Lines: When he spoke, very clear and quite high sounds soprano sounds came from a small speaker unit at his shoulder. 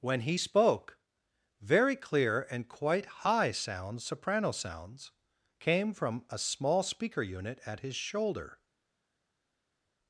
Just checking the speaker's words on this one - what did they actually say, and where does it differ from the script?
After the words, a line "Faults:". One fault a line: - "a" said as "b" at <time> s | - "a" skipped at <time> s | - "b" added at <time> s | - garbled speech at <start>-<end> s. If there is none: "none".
When he spoke, very clear and quite high sounds soprano sounds came from a small speaker unit at his shoulder.
Faults:
none